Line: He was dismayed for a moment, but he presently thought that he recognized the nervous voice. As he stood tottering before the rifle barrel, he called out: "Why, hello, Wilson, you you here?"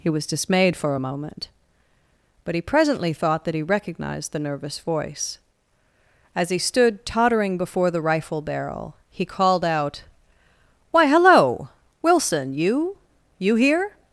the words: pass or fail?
pass